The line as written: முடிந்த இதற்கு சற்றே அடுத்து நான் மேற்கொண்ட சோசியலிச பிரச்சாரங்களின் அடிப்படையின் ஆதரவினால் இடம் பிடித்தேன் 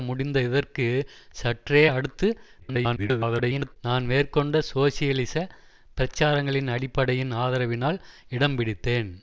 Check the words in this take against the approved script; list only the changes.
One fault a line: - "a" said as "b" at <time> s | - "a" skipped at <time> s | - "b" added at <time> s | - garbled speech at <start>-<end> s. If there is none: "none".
- garbled speech at 2.6-3.8 s